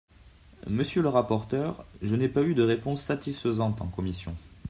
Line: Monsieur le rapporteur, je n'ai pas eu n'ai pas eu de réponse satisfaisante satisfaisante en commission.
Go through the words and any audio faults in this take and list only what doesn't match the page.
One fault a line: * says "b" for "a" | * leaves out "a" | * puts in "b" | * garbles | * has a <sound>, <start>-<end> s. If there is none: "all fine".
* leaves out "n'ai pas eu"
* leaves out "satisfaisante"